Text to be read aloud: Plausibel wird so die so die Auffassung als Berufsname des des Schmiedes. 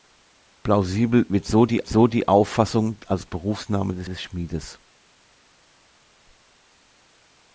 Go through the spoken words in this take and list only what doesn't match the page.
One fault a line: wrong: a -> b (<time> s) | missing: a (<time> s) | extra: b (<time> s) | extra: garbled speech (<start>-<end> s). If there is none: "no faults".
no faults